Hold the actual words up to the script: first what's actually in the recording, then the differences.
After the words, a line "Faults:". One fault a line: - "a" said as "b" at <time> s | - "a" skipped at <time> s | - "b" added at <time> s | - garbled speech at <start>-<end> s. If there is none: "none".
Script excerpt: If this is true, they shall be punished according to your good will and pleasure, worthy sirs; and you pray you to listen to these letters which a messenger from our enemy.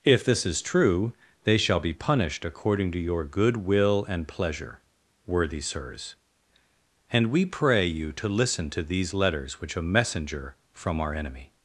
If this is true, they shall be punished according to your good will and pleasure, worthy sirs; and we pray you to listen to these letters which a messenger from our enemy.
Faults:
- "you" said as "we" at 7.3 s